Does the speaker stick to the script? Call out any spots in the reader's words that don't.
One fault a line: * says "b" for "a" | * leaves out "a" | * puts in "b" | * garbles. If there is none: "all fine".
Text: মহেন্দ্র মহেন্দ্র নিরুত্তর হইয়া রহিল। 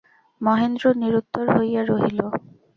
* leaves out "মহেন্দ্র"